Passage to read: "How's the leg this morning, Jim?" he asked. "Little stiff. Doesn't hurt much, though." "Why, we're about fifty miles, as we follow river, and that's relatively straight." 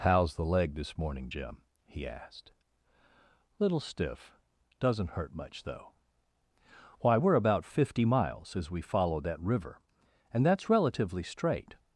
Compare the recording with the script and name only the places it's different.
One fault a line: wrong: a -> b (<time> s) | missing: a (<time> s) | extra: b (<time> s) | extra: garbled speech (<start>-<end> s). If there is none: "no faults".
extra: that (9.2 s)